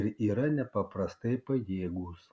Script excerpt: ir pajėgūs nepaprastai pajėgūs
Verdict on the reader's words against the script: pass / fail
fail